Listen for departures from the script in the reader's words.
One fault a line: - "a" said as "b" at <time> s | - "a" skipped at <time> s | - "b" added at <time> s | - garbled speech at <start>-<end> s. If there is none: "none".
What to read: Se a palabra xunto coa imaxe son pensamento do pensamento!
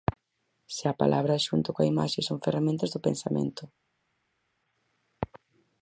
- "pensamento" said as "ferramentas" at 2.5 s